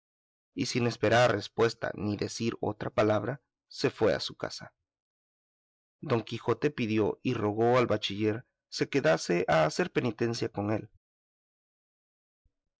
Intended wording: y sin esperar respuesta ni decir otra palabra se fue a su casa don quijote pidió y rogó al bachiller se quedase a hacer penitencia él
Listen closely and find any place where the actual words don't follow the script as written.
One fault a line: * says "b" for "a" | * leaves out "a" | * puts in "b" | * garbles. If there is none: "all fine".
* puts in "con"